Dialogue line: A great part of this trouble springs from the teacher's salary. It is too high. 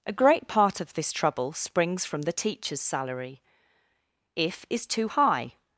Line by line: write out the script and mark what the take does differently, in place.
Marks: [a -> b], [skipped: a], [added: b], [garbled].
A great part of this trouble springs from the teacher's salary. [It -> If] is too high.